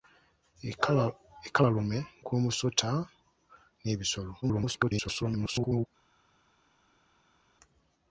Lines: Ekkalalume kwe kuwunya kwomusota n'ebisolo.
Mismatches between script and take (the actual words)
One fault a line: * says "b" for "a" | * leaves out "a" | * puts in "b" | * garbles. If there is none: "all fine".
* leaves out "kwe kuwunya"
* garbles